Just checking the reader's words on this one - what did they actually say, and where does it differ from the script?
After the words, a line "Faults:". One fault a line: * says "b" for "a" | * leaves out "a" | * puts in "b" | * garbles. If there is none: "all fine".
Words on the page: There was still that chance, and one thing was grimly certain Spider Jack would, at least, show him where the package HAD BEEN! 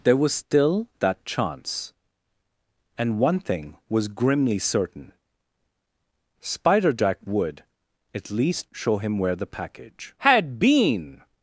There was still that chance, and one thing was grimly certain Spider Jack would, at least, show him where the package HAD BEEN!
Faults:
all fine